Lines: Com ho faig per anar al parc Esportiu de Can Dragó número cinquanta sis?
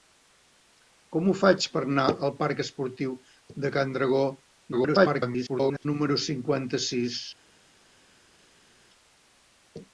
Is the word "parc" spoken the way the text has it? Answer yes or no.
yes